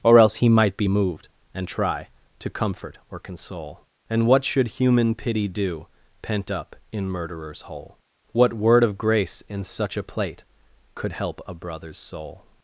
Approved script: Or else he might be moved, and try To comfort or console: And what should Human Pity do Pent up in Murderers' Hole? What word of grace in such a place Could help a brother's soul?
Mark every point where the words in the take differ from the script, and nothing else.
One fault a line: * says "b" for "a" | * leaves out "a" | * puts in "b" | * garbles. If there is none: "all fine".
* says "plate" for "place"